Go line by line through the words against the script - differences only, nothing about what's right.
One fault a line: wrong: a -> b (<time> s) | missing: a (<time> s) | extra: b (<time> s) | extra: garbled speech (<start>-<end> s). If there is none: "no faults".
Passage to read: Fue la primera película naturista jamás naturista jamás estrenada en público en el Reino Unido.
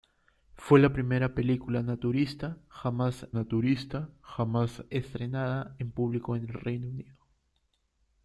no faults